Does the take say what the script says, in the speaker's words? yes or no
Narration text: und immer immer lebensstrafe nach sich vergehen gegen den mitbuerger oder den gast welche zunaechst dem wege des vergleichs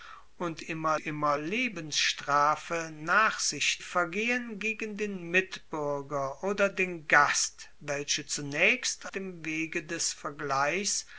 yes